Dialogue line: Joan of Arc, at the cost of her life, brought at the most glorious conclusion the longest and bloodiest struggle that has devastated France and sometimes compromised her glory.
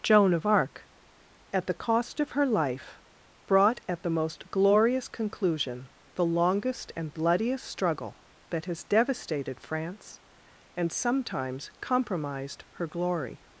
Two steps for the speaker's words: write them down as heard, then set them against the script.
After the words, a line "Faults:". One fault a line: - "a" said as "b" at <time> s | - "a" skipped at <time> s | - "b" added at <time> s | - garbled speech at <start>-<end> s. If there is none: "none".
Joan of Arc, at the cost of her life, brought at the most glorious conclusion the longest and bloodiest struggle that has devastated France and sometimes compromised her glory.
Faults:
none